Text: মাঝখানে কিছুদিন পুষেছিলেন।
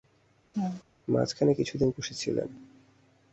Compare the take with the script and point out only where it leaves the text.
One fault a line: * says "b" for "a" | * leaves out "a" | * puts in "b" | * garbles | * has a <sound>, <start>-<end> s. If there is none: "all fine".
* has a laugh, 0.5-0.8 s